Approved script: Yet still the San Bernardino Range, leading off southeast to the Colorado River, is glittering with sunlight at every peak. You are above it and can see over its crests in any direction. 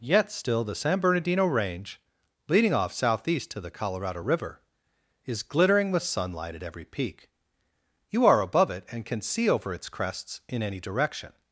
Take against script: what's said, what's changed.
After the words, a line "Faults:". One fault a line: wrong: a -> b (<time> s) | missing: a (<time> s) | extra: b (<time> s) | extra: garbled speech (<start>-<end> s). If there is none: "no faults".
Yet still the San Bernardino Range, leading off southeast to the Colorado River, is glittering with sunlight at every peak. You are above it and can see over its crests in any direction.
Faults:
no faults